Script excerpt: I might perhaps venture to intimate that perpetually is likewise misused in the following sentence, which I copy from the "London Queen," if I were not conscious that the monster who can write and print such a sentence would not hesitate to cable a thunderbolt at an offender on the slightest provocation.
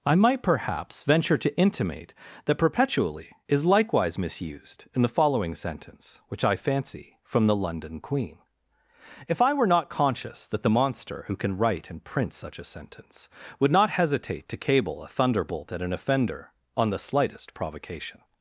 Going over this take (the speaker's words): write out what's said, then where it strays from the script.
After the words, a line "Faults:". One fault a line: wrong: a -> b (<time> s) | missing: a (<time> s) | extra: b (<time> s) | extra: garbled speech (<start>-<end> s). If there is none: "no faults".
I might perhaps venture to intimate that perpetually is likewise misused in the following sentence, which I fancy from the "London Queen," if I were not conscious that the monster who can write and print such a sentence would not hesitate to cable a thunderbolt at an offender on the slightest provocation.
Faults:
wrong: copy -> fancy (6.6 s)